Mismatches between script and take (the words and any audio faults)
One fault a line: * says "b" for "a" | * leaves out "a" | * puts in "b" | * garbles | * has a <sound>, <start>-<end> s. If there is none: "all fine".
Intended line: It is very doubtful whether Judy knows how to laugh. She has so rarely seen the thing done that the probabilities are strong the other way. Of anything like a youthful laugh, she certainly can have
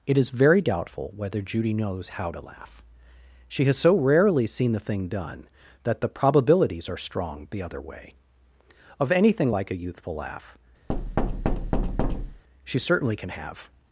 * has a thud, 10.9-12.4 s